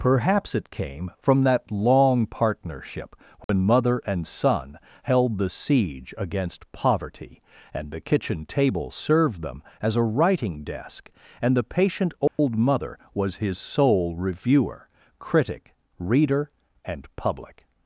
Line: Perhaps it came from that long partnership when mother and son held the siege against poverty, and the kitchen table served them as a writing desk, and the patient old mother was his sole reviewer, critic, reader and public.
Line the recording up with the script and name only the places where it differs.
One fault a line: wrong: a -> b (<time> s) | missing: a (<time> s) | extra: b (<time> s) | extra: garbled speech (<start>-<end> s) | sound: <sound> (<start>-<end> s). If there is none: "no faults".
sound: dropout (3.4-3.5 s)
sound: dropout (12.3-12.4 s)